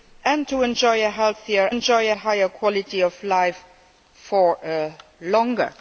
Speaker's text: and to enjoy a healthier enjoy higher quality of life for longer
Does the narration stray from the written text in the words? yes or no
no